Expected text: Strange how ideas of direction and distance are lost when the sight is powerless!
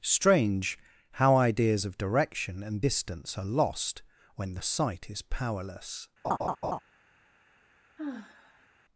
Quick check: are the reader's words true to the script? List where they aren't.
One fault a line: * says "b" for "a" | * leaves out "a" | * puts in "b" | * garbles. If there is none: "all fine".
all fine